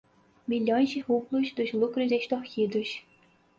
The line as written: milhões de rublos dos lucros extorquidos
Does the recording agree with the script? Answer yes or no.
yes